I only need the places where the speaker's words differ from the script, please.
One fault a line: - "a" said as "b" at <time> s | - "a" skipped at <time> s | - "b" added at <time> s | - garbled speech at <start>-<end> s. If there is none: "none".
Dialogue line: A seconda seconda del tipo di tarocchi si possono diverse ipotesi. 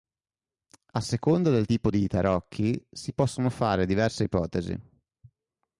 - "seconda" skipped at 1.5 s
- "fare" added at 3.5 s